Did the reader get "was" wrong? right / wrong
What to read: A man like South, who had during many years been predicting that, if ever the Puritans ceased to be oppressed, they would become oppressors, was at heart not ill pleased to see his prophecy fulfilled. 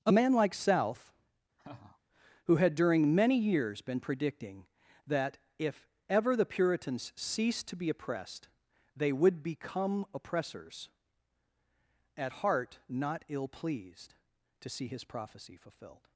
wrong